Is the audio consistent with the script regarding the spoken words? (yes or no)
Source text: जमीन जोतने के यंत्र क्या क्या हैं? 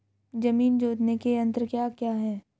yes